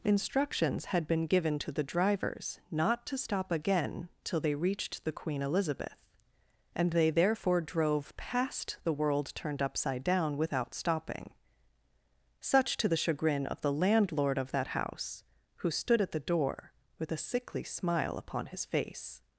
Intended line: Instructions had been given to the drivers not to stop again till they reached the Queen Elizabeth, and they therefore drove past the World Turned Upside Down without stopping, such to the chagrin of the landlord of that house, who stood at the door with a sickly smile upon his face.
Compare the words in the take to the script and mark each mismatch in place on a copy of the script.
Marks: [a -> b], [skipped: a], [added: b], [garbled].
Instructions had been given to the drivers not to stop again till they reached the Queen Elizabeth, and they therefore drove past the World Turned Upside Down without stopping, such to the chagrin of the landlord of that house, who stood at the door with a sickly smile upon his face.